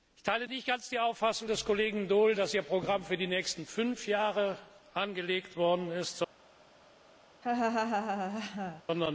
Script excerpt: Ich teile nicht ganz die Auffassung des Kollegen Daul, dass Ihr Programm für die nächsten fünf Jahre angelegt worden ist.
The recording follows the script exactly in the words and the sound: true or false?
false